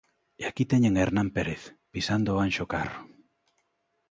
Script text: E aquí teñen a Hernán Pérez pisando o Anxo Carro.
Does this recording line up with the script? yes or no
yes